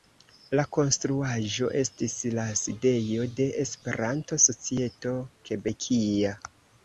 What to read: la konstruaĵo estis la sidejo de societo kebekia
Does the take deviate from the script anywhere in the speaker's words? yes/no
yes